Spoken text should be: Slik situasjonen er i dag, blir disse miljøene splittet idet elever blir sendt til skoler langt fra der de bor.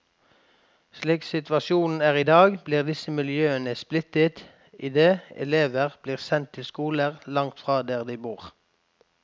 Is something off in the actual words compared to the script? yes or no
no